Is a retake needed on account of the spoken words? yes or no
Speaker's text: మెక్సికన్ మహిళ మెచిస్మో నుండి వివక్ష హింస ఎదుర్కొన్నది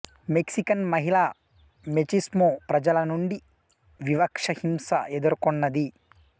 yes